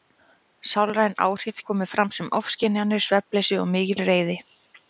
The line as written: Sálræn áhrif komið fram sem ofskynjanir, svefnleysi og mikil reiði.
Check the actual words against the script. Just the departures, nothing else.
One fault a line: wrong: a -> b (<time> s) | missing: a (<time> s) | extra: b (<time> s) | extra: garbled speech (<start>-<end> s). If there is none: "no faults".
no faults